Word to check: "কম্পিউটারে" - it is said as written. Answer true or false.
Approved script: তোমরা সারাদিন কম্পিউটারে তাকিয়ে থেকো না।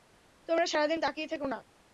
false